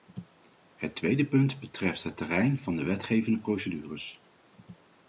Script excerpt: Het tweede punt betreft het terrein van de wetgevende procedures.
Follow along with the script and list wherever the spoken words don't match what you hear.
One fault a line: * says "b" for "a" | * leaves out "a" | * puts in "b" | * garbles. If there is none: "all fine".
all fine